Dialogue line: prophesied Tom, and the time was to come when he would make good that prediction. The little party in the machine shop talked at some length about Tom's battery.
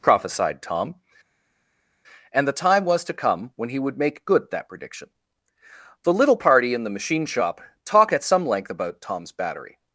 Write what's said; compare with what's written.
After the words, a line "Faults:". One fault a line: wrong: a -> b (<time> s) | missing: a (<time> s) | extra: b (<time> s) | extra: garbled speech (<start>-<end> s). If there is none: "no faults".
prophesied Tom, and the time was to come when he would make good that prediction. The little party in the machine shop talk at some length about Tom's battery.
Faults:
wrong: talked -> talk (7.8 s)